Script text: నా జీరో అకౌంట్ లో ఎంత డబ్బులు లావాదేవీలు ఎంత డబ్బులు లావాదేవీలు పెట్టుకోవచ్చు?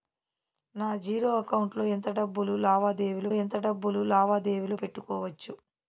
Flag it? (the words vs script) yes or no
no